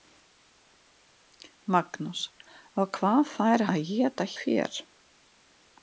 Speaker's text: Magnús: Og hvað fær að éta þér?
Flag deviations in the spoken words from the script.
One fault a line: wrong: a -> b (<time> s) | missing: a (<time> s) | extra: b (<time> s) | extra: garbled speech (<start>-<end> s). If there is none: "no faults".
no faults